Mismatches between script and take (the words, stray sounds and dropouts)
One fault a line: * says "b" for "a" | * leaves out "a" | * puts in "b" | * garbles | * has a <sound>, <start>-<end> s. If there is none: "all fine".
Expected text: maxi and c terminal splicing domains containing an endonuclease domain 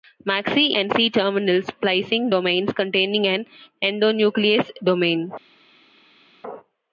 all fine